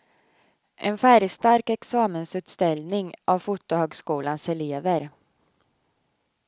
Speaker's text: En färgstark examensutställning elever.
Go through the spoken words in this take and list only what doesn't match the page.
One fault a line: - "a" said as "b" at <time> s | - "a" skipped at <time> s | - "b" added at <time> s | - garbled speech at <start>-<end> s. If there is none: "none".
- "av fotohögskolans" added at 3.2 s